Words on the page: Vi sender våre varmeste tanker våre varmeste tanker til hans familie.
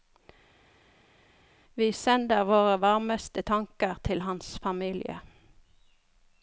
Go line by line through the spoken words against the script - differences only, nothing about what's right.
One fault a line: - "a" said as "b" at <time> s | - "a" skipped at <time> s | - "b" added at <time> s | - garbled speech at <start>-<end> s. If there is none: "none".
- "våre varmeste tanker" skipped at 3.9 s